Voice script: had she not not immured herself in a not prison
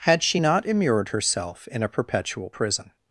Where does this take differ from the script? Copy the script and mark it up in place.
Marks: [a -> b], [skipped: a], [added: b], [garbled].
had she not [skipped: not] immured herself in a [not -> perpetual] prison